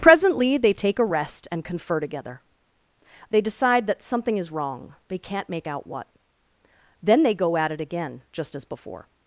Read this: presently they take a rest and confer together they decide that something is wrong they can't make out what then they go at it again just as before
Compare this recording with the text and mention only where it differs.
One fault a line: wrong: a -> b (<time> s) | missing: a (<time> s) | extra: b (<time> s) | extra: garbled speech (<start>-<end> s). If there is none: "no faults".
no faults